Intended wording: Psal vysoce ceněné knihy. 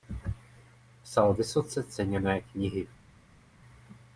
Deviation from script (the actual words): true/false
false